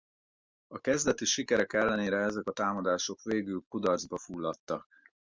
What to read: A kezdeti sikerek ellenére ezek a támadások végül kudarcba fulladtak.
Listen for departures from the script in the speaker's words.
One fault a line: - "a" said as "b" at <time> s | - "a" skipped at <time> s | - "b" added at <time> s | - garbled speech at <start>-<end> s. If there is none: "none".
none